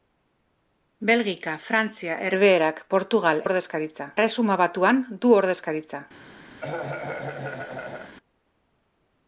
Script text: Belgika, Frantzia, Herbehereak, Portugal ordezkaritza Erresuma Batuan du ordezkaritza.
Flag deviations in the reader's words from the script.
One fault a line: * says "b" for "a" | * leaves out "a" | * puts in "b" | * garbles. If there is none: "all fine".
all fine